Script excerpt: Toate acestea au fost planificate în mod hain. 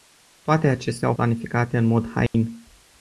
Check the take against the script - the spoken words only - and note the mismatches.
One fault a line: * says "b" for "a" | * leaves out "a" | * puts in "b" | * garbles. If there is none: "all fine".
* leaves out "fost"